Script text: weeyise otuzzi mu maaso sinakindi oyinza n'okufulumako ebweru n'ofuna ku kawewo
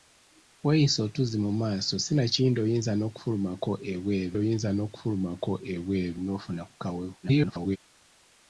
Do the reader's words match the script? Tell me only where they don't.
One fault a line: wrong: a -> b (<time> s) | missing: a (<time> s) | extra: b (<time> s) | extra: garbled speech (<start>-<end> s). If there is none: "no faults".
extra: oyinza n'okufulumako ebweru (4.4 s)
extra: garbled speech (7.2-7.8 s)